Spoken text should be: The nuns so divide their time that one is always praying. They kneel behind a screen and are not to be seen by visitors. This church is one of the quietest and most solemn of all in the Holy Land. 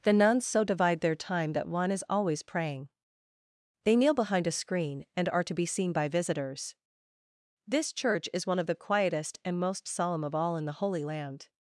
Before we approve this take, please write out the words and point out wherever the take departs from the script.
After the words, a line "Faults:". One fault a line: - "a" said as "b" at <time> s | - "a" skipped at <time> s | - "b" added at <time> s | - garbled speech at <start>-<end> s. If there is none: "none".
The nuns so divide their time that one is always praying. They kneel behind a screen and are to be seen by visitors. This church is one of the quietest and most solemn of all in the Holy Land.
Faults:
- "not" skipped at 5.4 s